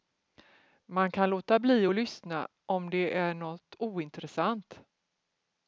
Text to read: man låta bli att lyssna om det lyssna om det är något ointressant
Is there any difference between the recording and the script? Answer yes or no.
yes